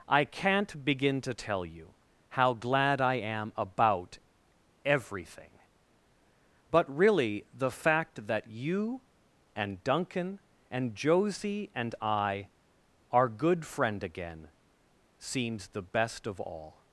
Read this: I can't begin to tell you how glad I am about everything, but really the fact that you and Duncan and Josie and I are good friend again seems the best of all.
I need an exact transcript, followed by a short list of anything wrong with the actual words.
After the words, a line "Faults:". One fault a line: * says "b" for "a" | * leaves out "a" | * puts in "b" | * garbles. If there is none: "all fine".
I can't begin to tell you how glad I am about everything, but really the fact that you and Duncan and Josie and I are good friend again seems the best of all.
Faults:
all fine